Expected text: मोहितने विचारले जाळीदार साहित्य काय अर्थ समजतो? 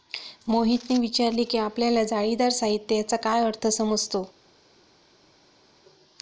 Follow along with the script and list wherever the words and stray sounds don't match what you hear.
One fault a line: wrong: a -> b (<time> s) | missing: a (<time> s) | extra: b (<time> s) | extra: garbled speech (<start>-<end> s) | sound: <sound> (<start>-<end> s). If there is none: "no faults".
extra: की आपल्याला (1.4 s)
extra: याचा (3.0 s)